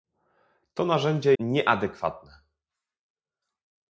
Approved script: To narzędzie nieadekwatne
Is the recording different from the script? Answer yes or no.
no